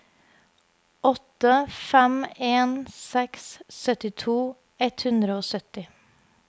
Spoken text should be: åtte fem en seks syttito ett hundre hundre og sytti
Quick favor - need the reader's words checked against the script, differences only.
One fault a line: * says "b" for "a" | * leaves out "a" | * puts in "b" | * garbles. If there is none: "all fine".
* leaves out "hundre"